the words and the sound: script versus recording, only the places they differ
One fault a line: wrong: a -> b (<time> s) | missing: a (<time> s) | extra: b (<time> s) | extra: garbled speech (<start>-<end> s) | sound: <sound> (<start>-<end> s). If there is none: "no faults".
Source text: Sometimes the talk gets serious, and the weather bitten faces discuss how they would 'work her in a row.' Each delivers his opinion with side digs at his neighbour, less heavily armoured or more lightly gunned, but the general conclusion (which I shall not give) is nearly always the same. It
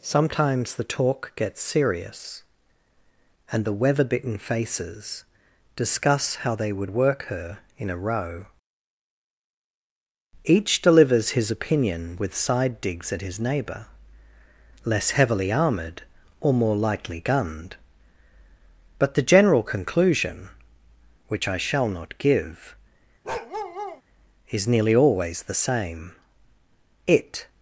sound: bark (23.2-24.0 s)